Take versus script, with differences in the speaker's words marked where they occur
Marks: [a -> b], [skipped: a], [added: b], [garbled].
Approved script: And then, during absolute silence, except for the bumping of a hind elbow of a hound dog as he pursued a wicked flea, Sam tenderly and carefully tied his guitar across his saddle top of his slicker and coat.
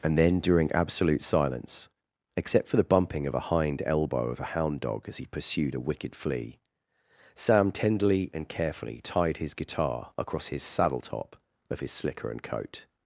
And then, during absolute silence, except for the bumping of a hind elbow of a hound dog as he pursued a wicked flea, Sam tenderly and carefully tied his guitar across his saddle top of his slicker and coat.